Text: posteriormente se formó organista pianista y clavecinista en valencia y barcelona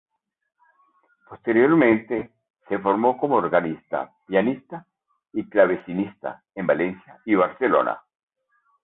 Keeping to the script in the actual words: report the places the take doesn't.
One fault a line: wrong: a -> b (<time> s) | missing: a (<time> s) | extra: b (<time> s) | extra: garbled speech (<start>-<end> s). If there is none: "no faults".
extra: como (3.2 s)